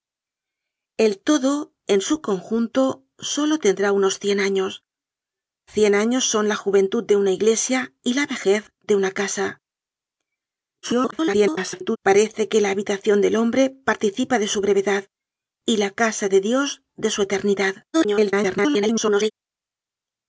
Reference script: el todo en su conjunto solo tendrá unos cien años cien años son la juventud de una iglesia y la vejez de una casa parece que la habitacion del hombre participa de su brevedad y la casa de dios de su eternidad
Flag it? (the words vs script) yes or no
yes